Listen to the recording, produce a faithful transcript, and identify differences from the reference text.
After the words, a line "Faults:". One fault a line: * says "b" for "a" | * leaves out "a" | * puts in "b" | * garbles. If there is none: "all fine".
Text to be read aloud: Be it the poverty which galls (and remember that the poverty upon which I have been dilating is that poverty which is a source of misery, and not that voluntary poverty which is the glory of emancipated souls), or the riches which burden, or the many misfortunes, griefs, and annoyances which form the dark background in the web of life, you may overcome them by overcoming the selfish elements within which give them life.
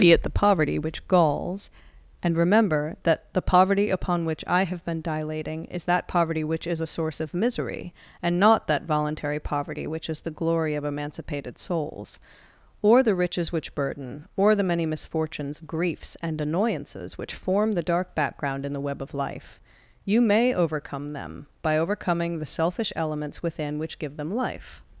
Be it the poverty which galls (and remember that the poverty upon which I have been dilating is that poverty which is a source of misery, and not that voluntary poverty which is the glory of emancipated souls), or the riches which burden, or the many misfortunes, griefs, and annoyances which form the dark background in the web of life, you may overcome them by overcoming the selfish elements within which give them life.
Faults:
all fine